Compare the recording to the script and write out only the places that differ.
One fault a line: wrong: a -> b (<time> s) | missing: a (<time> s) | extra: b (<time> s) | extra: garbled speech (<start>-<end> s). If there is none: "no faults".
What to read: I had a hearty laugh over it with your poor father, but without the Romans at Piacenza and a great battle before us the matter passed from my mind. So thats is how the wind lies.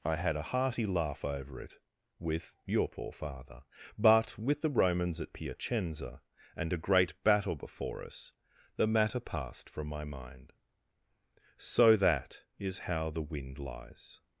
wrong: without -> with (4.4 s)
wrong: thats -> that (12.0 s)